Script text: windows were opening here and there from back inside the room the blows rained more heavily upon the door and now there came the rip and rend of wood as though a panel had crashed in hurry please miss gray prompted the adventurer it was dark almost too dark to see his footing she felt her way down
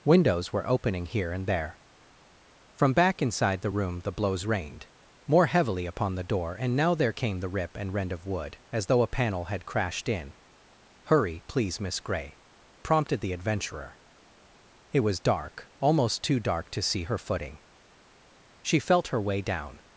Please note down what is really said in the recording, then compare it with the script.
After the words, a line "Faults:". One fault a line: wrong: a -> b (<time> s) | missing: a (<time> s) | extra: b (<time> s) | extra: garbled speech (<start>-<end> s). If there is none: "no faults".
windows were opening here and there from back inside the room the blows rained more heavily upon the door and now there came the rip and rend of wood as though a panel had crashed in hurry please miss gray prompted the adventurer it was dark almost too dark to see her footing she felt her way down
Faults:
wrong: his -> her (17.0 s)